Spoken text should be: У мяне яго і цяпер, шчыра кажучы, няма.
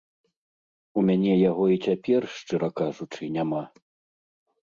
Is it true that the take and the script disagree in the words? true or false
false